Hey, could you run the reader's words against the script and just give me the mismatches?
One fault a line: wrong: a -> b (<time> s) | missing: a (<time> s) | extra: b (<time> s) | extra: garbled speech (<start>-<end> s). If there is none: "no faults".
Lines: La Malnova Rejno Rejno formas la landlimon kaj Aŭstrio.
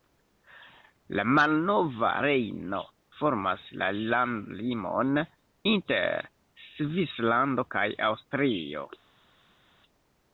missing: Rejno (2.8 s)
extra: inter Svislando (5.7 s)